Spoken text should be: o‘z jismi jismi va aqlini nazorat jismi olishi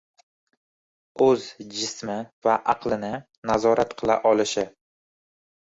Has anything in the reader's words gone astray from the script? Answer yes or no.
yes